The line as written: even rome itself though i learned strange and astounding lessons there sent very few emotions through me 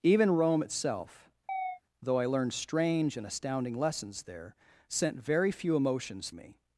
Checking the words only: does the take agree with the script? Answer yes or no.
no